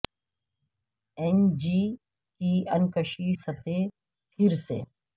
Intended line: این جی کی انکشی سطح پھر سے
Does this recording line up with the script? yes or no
yes